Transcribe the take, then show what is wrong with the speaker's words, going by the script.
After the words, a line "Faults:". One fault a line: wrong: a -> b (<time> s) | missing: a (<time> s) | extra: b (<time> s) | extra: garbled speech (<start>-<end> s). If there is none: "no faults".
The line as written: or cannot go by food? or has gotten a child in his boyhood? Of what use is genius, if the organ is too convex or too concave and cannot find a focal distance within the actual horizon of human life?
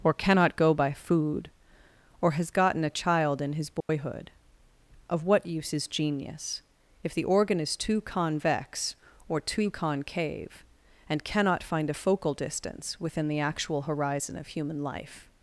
or cannot go by food? or has gotten a child in his boyhood? Of what use is genius, if the organ is too convex or too concave and cannot find a focal distance within the actual horizon of human life?
Faults:
no faults